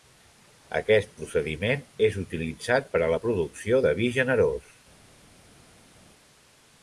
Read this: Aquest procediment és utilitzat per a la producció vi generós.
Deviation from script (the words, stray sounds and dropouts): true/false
true